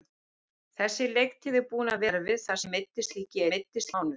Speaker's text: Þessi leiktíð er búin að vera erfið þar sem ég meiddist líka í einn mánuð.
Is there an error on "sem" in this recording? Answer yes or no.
yes